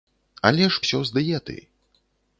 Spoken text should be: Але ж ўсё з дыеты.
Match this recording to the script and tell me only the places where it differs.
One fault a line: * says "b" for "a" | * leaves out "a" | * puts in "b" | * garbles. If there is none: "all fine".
all fine